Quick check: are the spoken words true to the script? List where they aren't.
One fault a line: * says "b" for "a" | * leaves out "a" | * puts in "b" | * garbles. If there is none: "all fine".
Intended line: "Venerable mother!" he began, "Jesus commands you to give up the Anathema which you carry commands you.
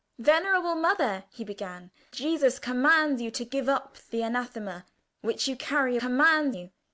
all fine